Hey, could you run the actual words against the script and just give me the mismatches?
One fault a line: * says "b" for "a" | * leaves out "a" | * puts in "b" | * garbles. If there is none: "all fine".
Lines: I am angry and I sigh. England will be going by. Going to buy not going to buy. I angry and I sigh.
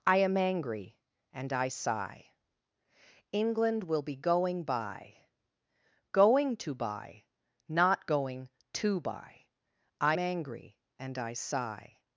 all fine